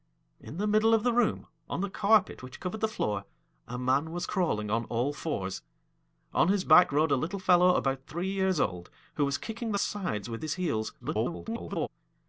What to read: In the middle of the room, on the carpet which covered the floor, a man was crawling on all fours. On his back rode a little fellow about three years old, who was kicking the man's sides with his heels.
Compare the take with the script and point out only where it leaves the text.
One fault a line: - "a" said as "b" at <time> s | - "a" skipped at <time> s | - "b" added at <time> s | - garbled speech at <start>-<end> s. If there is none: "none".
- "man's" skipped at 9.8 s
- garbled speech at 11.0-11.9 s